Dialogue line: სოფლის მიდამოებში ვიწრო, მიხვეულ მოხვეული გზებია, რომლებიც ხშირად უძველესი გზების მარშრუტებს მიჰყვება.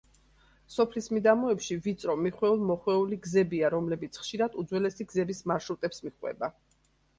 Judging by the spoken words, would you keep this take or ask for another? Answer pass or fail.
pass